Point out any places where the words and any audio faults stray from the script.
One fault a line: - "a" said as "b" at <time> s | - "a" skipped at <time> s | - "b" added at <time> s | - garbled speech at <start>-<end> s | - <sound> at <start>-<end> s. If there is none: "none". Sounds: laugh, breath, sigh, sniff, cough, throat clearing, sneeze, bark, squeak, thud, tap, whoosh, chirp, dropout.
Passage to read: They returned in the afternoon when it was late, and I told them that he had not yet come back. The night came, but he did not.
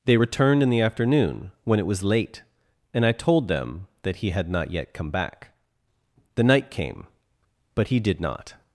none